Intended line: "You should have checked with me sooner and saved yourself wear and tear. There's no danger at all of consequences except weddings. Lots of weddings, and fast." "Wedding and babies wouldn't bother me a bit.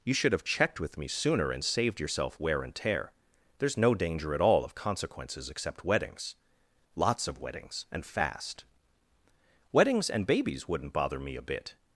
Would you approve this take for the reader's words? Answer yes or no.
no